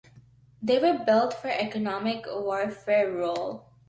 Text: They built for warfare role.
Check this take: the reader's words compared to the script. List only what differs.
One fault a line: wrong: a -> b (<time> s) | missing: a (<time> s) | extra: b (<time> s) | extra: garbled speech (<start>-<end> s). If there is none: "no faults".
extra: were (0.8 s)
extra: economic (1.5 s)